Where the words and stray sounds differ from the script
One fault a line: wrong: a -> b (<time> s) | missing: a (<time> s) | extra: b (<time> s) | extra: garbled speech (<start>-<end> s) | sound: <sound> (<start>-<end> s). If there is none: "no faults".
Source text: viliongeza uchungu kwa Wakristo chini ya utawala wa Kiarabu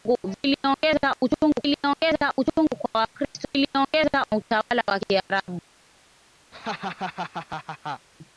extra: viliongeza uchungu (1.6 s)
wrong: chini -> viliongeza (3.5 s)
sound: laugh (6.5-8.1 s)